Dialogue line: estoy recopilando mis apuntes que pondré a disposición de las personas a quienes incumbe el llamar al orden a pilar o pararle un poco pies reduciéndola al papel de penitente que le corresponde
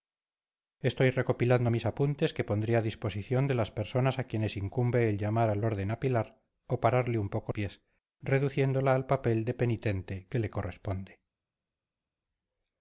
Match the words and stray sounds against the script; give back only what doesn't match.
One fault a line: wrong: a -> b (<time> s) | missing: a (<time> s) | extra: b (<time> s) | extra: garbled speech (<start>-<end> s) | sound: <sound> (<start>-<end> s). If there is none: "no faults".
no faults